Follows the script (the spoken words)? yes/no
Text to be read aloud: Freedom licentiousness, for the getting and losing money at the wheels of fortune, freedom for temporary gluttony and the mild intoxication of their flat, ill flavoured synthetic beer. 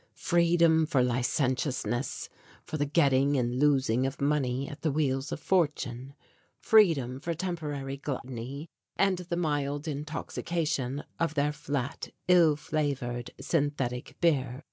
no